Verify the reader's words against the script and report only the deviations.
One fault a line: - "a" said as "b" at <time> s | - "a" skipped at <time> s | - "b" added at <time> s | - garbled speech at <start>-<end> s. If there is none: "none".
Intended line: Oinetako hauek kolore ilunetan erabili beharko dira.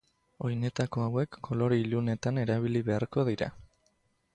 none